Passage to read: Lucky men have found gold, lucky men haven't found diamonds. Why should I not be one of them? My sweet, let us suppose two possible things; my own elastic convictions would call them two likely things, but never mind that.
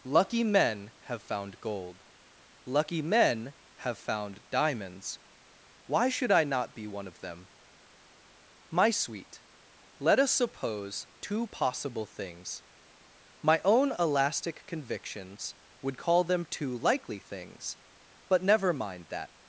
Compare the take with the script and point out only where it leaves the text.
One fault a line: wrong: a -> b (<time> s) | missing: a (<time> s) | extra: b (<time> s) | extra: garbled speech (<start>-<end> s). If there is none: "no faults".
wrong: haven't -> have (3.9 s)